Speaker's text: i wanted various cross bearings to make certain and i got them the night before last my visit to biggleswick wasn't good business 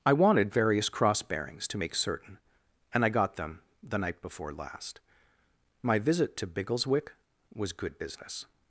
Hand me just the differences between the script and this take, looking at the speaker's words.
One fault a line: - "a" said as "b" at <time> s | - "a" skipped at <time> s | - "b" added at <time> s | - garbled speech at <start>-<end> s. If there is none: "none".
- "wasn't" said as "was" at 7.5 s